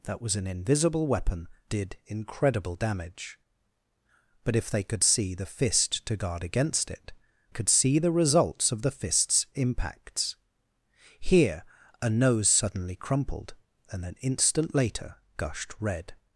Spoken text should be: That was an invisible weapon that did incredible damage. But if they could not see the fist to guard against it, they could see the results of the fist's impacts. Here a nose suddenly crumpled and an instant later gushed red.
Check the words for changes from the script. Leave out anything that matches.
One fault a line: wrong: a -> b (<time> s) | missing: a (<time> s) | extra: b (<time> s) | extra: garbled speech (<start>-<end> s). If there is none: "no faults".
missing: that (1.5 s)
missing: not (5.0 s)
missing: they (7.1 s)